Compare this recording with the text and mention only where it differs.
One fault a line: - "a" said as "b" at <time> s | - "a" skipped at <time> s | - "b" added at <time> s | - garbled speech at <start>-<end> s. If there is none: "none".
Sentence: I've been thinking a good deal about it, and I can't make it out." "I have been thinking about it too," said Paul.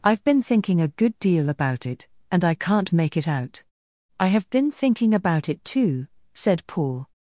none